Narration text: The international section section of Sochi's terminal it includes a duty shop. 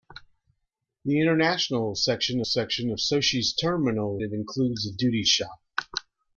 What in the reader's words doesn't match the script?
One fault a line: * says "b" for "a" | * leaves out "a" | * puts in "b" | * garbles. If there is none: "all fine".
all fine